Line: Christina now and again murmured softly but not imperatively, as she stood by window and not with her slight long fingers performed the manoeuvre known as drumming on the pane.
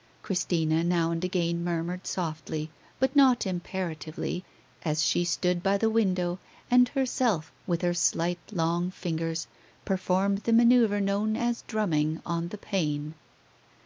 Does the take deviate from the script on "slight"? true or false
false